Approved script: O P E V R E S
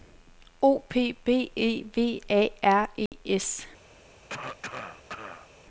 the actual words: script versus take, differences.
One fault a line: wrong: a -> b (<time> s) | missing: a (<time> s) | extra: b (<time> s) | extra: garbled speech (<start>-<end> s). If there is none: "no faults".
extra: B (1.2 s)
extra: A (2.3 s)